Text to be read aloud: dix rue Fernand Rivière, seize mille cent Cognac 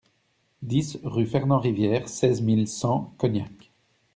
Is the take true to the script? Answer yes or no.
yes